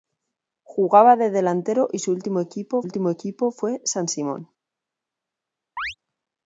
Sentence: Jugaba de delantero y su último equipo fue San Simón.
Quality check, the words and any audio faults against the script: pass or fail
fail